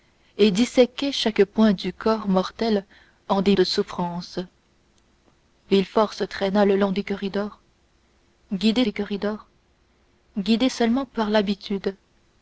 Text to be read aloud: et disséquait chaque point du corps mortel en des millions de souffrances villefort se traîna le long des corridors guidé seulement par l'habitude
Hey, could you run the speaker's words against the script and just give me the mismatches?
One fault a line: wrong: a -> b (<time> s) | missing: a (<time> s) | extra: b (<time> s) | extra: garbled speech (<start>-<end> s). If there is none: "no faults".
missing: millions (3.5 s)
extra: des corridors guidé (8.8 s)